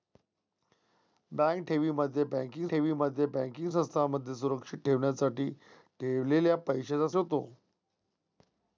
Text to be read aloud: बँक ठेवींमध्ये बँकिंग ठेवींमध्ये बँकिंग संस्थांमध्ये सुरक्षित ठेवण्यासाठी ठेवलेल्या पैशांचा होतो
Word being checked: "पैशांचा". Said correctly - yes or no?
yes